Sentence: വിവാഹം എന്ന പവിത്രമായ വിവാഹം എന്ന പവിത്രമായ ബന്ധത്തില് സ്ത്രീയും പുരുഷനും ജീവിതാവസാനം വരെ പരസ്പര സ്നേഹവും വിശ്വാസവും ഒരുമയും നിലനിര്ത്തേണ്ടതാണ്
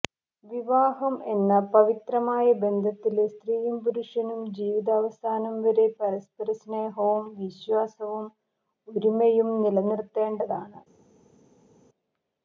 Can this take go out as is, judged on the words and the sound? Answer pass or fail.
fail